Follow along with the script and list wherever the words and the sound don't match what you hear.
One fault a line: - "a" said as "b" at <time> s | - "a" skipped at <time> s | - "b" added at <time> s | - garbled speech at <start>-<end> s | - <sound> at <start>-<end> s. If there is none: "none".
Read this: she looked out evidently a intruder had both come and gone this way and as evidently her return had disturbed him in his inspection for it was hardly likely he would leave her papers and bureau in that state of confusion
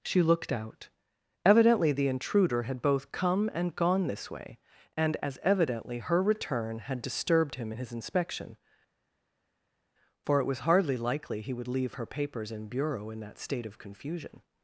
- "a" said as "the" at 1.9 s